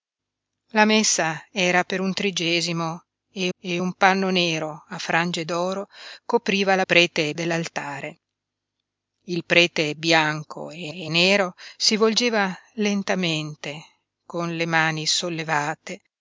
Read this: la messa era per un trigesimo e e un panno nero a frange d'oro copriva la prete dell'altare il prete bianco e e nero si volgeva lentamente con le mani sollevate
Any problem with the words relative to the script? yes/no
no